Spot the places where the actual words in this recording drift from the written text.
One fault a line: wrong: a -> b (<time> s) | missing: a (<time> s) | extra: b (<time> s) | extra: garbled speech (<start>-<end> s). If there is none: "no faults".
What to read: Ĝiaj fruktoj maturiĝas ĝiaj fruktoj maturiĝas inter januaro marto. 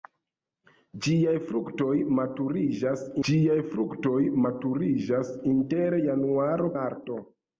no faults